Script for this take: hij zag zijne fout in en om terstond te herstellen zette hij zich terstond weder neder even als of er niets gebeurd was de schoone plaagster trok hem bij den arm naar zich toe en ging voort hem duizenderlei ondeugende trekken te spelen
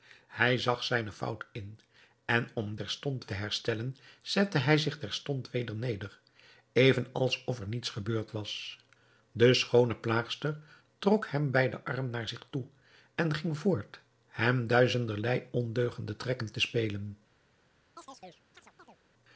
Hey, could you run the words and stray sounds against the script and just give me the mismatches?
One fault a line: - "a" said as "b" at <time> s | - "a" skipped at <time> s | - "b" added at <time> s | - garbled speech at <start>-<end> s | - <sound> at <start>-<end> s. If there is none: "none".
- chirp at 18.0-19.0 s